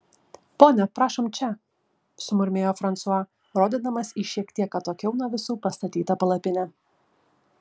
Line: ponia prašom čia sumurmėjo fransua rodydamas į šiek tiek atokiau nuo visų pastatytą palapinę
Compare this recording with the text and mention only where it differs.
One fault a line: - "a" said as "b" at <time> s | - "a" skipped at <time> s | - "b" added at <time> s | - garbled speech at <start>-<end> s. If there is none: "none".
none